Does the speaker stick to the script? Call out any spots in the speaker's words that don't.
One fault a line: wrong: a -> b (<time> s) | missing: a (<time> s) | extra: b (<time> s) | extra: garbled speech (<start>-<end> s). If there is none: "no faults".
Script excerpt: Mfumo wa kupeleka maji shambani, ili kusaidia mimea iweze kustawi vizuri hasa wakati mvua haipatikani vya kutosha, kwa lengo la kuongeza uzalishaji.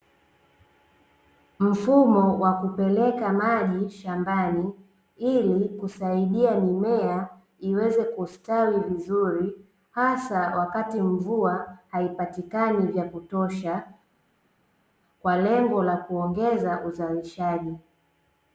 no faults